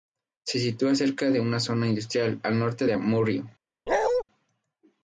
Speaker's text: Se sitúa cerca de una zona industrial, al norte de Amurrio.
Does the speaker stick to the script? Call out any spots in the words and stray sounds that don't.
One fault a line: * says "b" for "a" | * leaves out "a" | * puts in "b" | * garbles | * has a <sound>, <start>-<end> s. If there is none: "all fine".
* has a bark, 3.9-4.2 s